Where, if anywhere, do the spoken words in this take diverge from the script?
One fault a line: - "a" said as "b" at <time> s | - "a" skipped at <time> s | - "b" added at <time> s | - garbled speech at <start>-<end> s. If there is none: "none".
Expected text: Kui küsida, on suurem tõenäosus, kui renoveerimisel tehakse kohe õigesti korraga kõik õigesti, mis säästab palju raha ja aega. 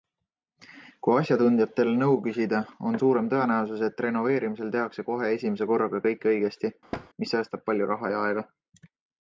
- "asjatundjatel nõu" added at 1.2 s
- "kui" said as "et" at 3.9 s
- "õigesti" said as "esimese" at 5.4 s